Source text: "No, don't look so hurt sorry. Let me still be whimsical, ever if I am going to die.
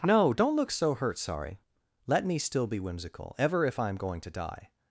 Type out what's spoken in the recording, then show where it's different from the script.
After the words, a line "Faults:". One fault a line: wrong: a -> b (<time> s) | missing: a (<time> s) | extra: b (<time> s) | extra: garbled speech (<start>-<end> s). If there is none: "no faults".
"No, don't look so hurt sorry. Let me still be whimsical, ever if I am going to die.
Faults:
no faults